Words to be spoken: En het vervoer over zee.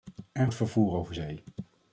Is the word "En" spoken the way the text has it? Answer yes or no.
yes